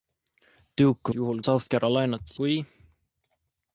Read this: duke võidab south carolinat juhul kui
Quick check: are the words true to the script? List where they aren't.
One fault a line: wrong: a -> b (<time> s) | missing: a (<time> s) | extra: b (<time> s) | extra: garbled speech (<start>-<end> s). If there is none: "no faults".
wrong: võidab -> juhul (1.2 s)
missing: juhul (2.4 s)